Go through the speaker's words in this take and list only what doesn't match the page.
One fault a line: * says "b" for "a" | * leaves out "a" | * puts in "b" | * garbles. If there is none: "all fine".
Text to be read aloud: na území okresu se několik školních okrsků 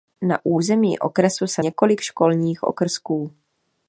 all fine